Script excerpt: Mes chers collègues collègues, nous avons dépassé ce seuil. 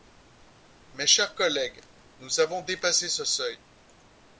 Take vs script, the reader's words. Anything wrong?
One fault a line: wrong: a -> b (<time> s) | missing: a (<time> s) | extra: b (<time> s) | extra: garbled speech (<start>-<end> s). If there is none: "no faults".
missing: collègues (1.8 s)